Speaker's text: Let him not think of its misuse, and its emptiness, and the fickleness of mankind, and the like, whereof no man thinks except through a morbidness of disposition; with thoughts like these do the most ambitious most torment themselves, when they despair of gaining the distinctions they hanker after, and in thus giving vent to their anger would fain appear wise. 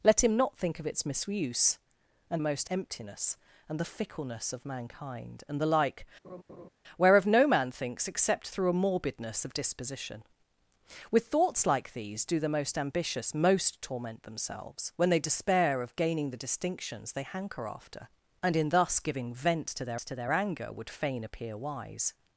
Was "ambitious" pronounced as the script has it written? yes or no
yes